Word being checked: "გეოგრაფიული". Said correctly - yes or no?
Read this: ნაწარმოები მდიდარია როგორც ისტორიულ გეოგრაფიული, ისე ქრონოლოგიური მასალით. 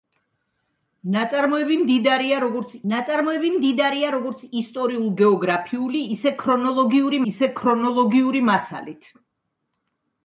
yes